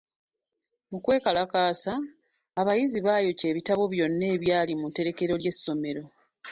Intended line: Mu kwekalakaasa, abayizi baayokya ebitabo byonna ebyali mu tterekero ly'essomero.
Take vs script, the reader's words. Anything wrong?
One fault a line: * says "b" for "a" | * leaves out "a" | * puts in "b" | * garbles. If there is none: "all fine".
all fine